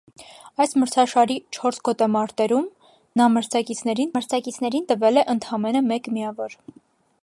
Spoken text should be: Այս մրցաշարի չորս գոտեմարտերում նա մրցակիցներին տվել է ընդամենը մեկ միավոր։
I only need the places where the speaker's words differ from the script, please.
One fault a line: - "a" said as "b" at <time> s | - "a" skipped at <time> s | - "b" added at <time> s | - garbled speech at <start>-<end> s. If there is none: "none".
- "մրցակիցներին" added at 4.1 s